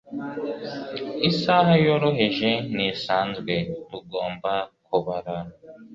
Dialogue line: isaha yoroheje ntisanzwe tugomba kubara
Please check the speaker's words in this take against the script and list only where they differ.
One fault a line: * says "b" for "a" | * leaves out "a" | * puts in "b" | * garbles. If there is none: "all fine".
all fine